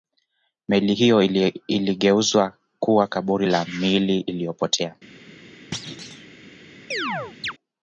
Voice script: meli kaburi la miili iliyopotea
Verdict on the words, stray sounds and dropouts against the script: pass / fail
fail